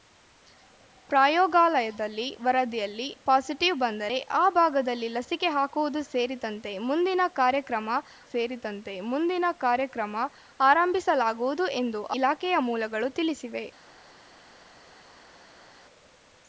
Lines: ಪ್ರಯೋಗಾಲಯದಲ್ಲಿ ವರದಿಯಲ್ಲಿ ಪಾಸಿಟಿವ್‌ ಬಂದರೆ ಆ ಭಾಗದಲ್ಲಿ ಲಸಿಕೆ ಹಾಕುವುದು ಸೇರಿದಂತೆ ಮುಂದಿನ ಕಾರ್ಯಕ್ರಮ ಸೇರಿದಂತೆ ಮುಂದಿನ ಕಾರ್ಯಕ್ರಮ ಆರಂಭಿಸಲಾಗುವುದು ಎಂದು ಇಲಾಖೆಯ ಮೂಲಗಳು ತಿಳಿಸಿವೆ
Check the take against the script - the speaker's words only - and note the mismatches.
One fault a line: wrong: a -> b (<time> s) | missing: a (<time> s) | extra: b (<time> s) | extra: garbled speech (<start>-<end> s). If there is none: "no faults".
no faults